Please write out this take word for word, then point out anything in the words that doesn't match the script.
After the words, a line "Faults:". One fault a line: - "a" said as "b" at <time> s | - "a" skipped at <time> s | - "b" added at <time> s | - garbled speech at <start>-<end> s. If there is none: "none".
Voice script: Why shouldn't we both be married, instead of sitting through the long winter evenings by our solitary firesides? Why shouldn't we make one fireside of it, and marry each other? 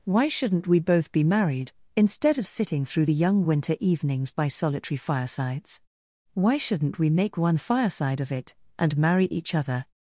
Why shouldn't we both be married, instead of sitting through the young winter evenings by solitary firesides? Why shouldn't we make one fireside of it, and marry each other?
Faults:
- "long" said as "young" at 3.1 s
- "our" skipped at 4.5 s